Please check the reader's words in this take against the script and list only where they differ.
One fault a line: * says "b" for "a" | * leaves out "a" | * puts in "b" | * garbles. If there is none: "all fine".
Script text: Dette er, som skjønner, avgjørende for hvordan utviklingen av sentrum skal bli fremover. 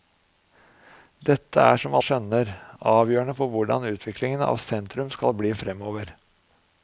all fine